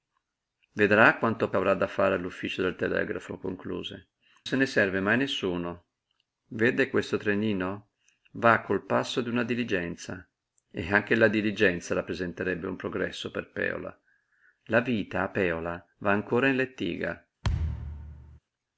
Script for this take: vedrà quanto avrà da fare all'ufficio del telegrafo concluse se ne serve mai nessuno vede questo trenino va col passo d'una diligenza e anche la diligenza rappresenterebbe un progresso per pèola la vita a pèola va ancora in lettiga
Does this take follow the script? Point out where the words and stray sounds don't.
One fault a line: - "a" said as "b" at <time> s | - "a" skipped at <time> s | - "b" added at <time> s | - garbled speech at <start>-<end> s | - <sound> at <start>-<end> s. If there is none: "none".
- thud at 17.4-18.4 s